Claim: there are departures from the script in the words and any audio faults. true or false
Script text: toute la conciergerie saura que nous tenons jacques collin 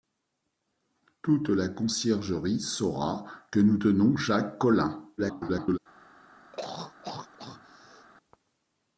true